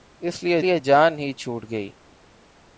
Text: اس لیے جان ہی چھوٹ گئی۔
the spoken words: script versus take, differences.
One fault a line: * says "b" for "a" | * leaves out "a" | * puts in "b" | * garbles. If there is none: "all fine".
* puts in "لیے"